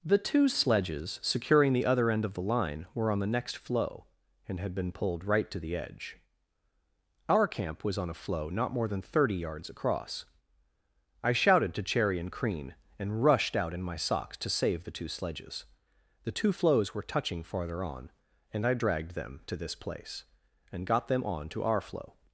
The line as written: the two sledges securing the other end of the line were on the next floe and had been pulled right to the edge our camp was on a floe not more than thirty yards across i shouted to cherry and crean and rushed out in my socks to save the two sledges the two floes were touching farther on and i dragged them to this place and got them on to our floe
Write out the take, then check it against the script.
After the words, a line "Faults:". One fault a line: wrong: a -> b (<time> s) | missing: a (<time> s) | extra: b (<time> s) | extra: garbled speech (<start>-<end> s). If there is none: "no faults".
the two sledges securing the other end of the line were on the next floe and had been pulled right to the edge our camp was on a floe not more than thirty yards across i shouted to cherry and crean and rushed out in my socks to save the two sledges the two floes were touching farther on and i dragged them to this place and got them on to our floe
Faults:
no faults